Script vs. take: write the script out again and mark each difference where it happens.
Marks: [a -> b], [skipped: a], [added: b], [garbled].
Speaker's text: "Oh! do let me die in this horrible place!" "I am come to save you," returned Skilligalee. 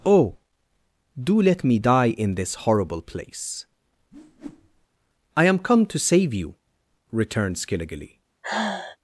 "Oh! do let me die in this horrible place!" "I am come to save you," returned Skilligalee.